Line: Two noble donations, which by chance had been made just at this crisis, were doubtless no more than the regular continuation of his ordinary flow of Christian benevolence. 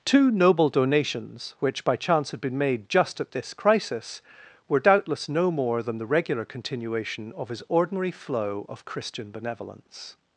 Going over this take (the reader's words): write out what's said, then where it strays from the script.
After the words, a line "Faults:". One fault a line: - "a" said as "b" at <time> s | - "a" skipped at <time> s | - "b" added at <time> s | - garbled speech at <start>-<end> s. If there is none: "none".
Two noble donations, which by chance had been made just at this crisis, were doubtless no more than the regular continuation of his ordinary flow of Christian benevolence.
Faults:
none